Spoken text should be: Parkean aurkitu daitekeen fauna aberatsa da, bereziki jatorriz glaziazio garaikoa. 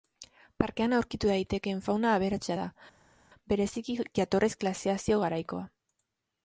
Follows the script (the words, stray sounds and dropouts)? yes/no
yes